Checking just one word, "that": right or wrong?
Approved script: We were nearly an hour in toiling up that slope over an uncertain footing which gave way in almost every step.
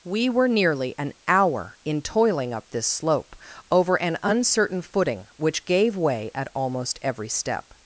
wrong